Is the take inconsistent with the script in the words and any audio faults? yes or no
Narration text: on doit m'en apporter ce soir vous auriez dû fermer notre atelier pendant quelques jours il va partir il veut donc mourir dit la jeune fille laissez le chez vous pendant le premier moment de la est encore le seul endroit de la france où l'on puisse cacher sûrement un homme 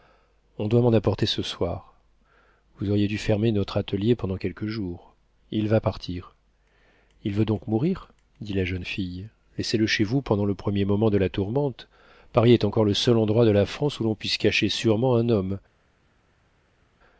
yes